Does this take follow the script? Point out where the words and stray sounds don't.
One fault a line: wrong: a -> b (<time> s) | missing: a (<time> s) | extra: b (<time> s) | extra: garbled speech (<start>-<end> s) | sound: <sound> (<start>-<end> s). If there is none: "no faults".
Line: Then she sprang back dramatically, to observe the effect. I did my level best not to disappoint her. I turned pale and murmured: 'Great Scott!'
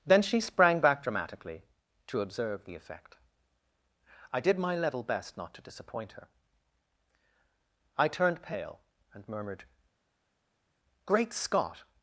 no faults